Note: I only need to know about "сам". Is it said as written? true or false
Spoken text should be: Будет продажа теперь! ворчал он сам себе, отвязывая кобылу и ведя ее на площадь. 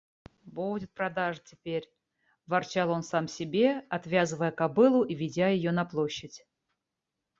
true